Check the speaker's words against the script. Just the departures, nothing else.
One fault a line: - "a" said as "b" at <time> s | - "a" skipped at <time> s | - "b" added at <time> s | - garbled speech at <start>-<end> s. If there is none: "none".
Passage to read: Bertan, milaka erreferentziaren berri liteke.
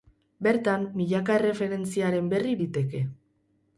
none